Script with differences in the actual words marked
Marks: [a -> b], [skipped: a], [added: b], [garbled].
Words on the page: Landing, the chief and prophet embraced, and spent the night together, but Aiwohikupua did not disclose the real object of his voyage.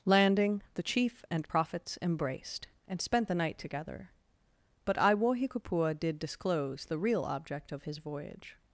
Landing, the chief and [prophet -> prophets] embraced, and spent the night together, but Aiwohikupua did [skipped: not] disclose the real object of his voyage.